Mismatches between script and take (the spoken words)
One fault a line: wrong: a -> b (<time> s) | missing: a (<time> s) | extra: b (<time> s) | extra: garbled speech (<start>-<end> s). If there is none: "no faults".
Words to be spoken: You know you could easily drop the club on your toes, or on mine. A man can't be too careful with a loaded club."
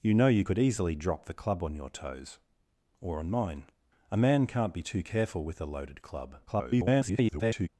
extra: garbled speech (6.5-7.7 s)